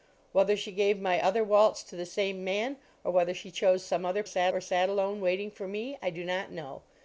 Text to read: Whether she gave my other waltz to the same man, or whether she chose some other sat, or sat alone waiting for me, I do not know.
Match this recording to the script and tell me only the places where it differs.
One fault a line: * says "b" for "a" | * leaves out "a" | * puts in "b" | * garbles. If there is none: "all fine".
all fine